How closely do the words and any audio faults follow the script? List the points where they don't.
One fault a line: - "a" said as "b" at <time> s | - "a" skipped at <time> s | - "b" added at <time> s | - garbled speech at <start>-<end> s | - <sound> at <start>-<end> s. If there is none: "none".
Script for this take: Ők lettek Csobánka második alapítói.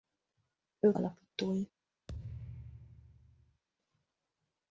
- "lettek Csobánka második" skipped at 1.0 s
- thud at 2.1-3.6 s